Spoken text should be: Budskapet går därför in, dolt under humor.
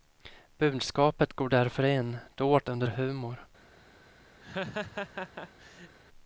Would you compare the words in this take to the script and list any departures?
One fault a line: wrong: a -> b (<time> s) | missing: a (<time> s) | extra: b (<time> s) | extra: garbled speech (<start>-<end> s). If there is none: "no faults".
no faults